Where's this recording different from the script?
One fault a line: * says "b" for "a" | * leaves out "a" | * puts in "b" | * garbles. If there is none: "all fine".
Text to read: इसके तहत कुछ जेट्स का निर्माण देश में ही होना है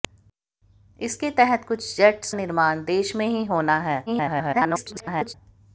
* leaves out "का"
* garbles